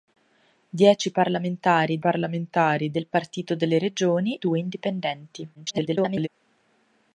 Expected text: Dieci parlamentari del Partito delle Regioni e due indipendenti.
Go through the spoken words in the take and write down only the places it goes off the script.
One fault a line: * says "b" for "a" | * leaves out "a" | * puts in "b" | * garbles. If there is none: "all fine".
* puts in "parlamentari"
* leaves out "e"
* garbles